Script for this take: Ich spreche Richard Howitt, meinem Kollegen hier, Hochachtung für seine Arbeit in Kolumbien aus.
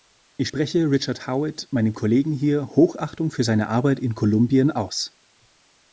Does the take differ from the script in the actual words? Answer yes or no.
no